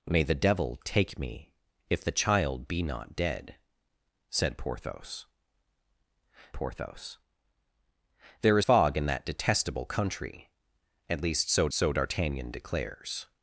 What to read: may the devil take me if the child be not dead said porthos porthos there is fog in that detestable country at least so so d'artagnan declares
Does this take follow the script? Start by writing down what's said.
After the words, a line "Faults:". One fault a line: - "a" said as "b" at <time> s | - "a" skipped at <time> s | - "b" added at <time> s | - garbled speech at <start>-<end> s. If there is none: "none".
may the devil take me if the child be not dead said porthos porthos there is fog in that detestable country at least so so d'artagnan declares
Faults:
none